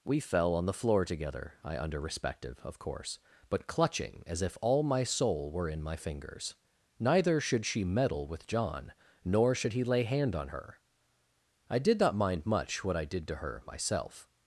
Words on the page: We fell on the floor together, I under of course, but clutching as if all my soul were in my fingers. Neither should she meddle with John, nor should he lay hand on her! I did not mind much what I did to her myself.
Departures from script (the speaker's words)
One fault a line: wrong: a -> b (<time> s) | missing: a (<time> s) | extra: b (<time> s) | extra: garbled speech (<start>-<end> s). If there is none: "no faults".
extra: respective (2.0 s)